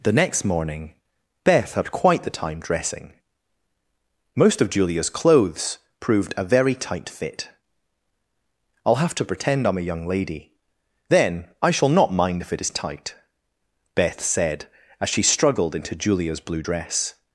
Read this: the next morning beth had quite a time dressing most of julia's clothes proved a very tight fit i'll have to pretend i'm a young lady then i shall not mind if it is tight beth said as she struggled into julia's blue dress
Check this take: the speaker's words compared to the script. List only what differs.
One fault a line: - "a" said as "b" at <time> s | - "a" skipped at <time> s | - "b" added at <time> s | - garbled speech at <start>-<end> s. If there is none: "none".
- "a" said as "the" at 2.2 s